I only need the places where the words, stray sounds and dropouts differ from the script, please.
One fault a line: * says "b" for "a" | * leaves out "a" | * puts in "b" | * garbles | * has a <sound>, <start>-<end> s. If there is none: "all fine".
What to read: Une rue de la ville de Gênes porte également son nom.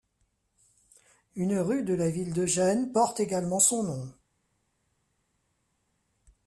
all fine